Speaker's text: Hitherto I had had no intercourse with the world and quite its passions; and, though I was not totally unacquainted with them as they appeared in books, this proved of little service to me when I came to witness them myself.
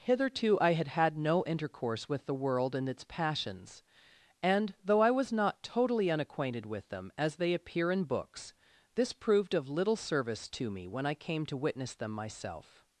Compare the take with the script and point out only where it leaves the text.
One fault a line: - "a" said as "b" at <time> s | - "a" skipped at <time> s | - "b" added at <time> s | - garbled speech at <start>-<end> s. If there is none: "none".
- "quite" skipped at 2.9 s
- "appeared" said as "appear" at 7.5 s